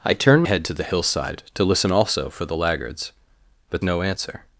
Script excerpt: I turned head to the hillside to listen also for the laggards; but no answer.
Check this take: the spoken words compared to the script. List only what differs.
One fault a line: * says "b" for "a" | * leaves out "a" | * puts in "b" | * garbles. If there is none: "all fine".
all fine